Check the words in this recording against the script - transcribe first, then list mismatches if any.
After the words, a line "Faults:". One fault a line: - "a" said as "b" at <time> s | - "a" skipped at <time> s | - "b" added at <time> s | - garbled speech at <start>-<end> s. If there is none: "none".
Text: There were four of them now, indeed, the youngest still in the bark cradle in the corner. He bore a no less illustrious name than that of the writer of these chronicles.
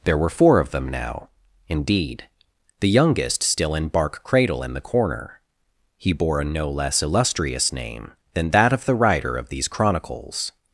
There were four of them now, indeed, the youngest still in bark cradle in the corner. He bore a no less illustrious name than that of the writer of these chronicles.
Faults:
- "the" skipped at 3.9 s